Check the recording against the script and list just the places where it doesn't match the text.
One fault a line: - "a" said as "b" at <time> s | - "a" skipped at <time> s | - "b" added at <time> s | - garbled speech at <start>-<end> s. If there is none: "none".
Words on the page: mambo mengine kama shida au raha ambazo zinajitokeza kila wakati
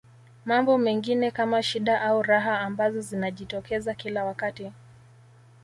none